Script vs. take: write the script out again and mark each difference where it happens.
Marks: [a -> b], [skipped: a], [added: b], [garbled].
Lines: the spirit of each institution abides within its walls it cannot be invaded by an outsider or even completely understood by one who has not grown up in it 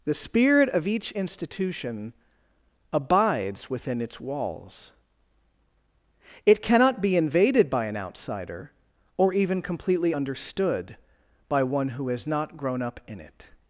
the spirit of each institution abides within its walls it cannot be invaded by an outsider or even completely understood by one who has not grown up in it